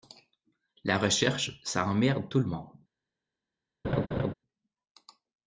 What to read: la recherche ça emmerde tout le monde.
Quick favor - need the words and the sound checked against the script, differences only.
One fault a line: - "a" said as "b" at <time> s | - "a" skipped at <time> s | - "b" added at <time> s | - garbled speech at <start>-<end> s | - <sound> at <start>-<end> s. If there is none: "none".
- laugh at 3.8-4.3 s